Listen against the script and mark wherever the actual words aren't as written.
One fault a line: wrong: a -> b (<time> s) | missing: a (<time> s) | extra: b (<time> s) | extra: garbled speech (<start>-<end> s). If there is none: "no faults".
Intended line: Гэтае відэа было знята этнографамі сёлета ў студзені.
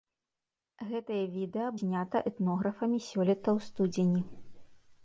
missing: было (1.7 s)